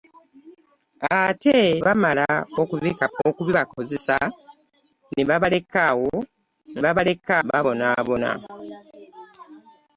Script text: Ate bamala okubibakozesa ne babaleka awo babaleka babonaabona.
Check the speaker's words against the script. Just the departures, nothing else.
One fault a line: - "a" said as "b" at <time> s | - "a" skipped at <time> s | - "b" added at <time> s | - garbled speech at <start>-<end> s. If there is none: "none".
none